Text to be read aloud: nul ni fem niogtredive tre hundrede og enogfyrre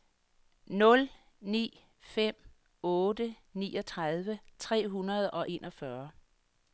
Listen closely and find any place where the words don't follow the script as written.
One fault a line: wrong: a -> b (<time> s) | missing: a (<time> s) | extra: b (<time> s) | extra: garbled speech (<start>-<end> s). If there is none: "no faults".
extra: otte (2.8 s)